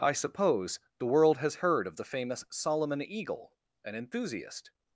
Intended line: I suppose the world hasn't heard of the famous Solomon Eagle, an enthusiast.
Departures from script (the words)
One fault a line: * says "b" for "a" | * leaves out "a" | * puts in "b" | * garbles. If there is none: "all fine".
* says "has" for "hasn't"